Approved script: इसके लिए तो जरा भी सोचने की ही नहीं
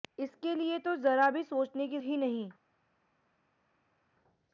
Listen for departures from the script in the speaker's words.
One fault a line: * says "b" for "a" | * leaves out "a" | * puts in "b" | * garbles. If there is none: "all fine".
all fine